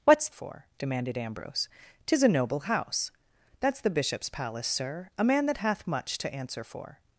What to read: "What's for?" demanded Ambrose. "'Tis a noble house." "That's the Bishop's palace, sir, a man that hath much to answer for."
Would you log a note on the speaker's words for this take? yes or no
no